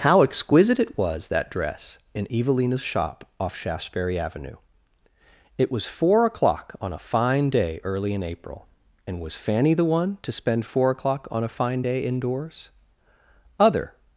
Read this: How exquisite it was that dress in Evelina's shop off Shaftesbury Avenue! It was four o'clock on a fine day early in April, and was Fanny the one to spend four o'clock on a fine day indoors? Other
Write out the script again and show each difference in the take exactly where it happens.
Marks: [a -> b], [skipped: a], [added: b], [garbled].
How exquisite it was that dress in Evelina's shop off Shaftesbury Avenue! It was four o'clock on a fine day early in April, and was Fanny the one to spend four o'clock on a fine day indoors? Other